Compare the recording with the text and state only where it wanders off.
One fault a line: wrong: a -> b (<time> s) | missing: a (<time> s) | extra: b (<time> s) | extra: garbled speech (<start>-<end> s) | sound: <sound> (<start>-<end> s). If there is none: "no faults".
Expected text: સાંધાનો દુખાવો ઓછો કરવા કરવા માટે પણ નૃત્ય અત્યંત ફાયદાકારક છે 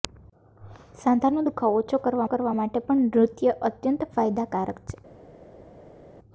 no faults